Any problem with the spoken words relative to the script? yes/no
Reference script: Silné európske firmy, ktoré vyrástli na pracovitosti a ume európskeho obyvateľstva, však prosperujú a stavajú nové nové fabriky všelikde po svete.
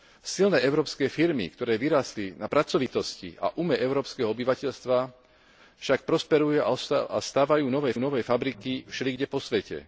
no